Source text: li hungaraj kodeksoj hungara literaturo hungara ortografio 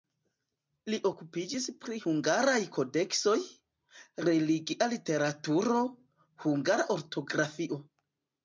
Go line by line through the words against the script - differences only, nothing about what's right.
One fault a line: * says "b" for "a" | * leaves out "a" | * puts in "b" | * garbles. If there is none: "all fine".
* puts in "okupiĝis pri"
* says "religia" for "hungara"